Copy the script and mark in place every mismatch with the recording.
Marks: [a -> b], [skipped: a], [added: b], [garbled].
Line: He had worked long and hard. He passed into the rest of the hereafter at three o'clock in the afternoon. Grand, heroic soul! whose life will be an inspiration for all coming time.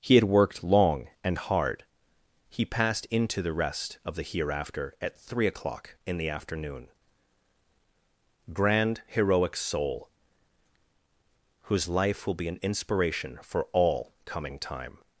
He had worked long and hard. He passed into the rest of the hereafter at three o'clock in the afternoon. Grand, heroic soul! whose life will be an inspiration for all coming time.